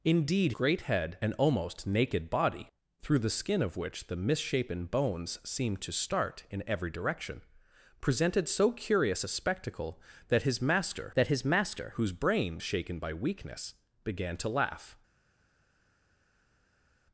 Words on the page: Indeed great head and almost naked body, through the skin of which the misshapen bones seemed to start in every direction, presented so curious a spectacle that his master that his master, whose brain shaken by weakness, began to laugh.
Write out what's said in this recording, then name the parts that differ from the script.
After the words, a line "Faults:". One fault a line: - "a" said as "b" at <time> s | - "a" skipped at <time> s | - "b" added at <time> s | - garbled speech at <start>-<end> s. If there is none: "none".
Indeed great head and almost naked body, through the skin of which the misshapen bones seemed to start in every direction, presented so curious a spectacle that his master that his master, whose brain shaken by weakness, began to laugh.
Faults:
none